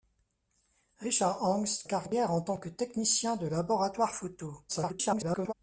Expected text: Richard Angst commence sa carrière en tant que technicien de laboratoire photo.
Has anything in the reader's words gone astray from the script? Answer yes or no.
yes